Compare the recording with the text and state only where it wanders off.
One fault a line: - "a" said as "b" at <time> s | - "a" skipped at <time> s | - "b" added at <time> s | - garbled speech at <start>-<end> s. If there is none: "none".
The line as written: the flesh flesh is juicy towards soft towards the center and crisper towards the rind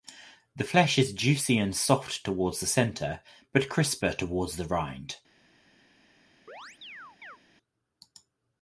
- "flesh" skipped at 1.0 s
- "towards" said as "and" at 1.6 s
- "and" said as "but" at 3.5 s